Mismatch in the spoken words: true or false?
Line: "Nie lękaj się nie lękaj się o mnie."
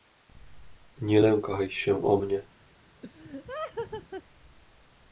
true